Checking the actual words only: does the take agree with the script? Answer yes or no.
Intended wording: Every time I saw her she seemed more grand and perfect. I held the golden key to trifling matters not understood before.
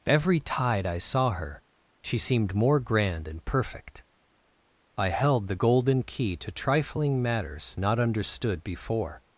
no